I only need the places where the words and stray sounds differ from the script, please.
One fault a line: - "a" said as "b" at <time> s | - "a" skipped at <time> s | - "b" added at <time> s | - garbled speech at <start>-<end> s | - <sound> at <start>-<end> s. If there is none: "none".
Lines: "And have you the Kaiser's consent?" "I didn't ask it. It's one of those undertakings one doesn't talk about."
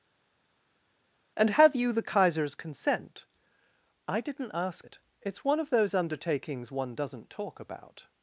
none